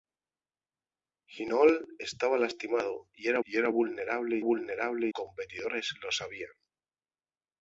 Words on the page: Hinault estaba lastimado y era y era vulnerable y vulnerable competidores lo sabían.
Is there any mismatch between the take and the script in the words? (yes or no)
no